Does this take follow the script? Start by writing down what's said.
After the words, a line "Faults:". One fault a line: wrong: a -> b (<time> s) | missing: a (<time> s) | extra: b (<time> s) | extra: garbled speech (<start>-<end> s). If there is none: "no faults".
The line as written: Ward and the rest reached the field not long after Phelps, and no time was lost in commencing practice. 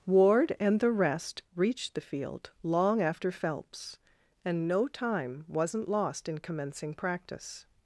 Ward and the rest reached the field long after Phelps, and no time wasn't lost in commencing practice.
Faults:
missing: not (2.5 s)
wrong: was -> wasn't (5.5 s)